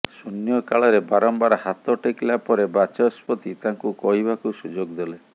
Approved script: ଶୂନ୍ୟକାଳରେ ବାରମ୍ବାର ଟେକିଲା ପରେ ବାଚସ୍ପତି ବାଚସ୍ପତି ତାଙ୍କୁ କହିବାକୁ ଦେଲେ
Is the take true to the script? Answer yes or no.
no